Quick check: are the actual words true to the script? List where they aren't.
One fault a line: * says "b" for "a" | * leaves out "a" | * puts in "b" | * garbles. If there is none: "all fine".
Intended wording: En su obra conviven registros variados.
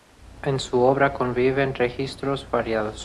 all fine